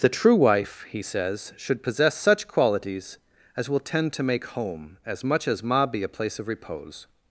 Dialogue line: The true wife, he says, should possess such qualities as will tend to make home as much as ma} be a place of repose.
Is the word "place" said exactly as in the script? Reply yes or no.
yes